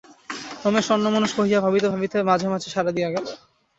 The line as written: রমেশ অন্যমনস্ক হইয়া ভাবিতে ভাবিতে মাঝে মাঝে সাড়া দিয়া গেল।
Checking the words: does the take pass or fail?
pass